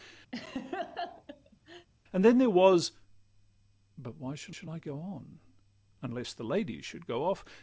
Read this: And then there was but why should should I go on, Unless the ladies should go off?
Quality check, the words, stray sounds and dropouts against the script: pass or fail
fail